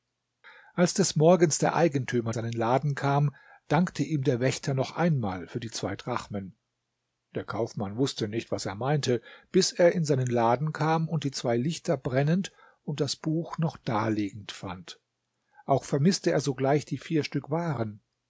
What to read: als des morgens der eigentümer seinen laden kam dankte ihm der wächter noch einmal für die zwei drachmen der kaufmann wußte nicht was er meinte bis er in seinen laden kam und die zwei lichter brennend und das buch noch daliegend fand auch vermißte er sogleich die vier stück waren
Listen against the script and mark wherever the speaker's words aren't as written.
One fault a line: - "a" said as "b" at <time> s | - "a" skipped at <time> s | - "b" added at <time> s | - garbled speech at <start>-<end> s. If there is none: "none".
none